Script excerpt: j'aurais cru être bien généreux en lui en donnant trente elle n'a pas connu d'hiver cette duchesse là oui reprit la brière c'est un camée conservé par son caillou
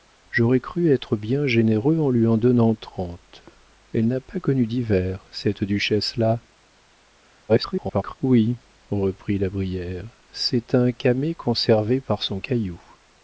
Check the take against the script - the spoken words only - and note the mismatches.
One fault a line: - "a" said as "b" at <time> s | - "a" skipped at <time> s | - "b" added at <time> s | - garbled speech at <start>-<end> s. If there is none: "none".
- garbled speech at 7.5-8.2 s